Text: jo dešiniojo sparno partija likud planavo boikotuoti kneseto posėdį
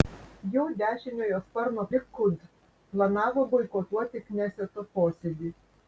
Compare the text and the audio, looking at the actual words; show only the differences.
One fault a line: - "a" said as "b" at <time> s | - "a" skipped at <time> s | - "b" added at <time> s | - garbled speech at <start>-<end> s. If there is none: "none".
- "partija" skipped at 1.9 s